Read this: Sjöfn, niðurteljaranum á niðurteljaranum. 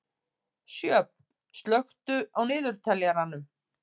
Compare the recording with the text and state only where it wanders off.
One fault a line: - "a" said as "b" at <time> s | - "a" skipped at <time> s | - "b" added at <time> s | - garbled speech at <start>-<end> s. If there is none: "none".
- "niðurteljaranum" said as "slökktu" at 1.6 s